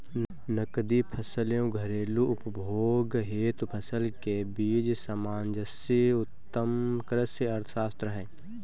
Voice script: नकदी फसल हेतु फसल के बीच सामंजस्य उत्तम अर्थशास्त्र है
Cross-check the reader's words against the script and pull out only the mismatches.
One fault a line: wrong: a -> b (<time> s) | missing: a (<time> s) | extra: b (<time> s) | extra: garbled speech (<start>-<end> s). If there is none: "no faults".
extra: एवं घरेलू उपभोग (1.6 s)
extra: कृषि (7.1 s)